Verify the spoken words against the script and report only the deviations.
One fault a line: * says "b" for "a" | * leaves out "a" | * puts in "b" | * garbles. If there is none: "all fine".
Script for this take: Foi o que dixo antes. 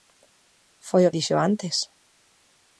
* leaves out "que"